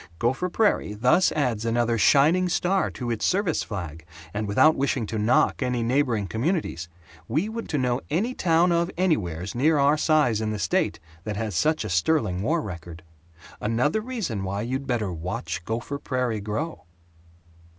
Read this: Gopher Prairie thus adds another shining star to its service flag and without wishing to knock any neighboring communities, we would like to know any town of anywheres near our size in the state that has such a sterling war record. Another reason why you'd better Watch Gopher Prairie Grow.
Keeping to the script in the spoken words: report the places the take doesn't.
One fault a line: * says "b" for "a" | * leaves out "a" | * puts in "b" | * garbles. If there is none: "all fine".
* leaves out "like"